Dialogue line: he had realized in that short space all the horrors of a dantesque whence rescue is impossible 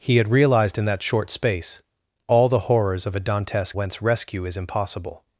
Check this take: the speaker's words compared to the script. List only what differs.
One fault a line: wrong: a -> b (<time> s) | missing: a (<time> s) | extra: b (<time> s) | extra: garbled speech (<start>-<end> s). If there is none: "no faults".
no faults